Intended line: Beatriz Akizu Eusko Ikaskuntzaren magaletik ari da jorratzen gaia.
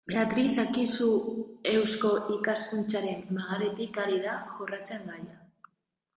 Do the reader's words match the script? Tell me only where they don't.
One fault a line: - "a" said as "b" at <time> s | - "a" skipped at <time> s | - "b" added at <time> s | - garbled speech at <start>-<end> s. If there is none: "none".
none